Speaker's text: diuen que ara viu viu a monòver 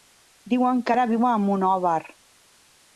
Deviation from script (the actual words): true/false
true